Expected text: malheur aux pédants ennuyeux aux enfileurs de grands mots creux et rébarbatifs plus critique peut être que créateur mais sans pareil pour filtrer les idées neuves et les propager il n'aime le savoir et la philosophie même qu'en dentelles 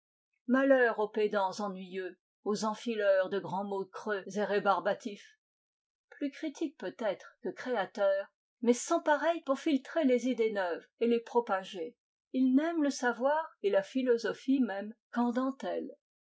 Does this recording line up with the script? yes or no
yes